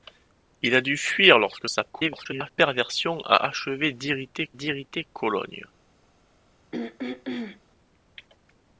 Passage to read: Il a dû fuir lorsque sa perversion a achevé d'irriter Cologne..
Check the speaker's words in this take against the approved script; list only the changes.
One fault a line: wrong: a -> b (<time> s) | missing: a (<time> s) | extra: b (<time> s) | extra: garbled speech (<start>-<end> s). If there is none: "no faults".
extra: garbled speech (1.9-2.5 s)
extra: d'irriter (4.5 s)